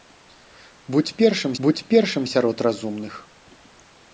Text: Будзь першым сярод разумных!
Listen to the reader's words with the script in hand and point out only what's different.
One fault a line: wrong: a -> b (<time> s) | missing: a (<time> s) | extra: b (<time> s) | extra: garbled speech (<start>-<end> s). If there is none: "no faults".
extra: будзь першым (1.7 s)